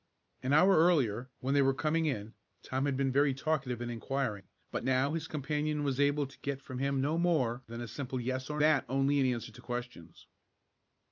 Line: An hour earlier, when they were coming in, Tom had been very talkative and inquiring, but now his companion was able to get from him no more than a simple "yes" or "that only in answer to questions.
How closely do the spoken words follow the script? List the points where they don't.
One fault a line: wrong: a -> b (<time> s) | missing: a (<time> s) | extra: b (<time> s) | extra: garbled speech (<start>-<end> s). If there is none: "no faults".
no faults